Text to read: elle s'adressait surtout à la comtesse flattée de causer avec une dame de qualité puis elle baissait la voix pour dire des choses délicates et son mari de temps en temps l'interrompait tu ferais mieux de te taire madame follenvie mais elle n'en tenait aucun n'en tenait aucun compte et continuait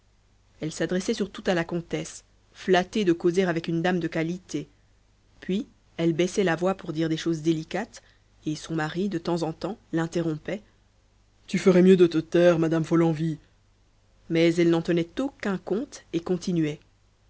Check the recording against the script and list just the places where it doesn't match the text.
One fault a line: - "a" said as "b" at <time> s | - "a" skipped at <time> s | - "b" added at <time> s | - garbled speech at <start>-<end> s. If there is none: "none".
- "n'en tenait aucun" skipped at 15.6 s